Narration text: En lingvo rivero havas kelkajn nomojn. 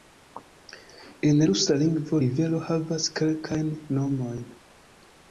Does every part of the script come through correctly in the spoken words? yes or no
no